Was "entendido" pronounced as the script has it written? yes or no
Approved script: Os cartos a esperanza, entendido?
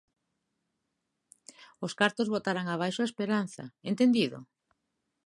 yes